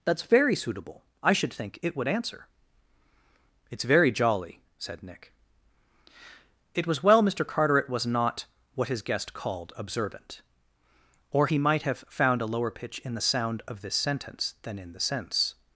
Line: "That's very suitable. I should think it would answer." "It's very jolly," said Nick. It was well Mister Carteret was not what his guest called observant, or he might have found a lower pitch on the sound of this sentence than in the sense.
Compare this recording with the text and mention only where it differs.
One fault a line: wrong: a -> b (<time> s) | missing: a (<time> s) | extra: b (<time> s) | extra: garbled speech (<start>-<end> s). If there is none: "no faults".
wrong: on -> in (13.0 s)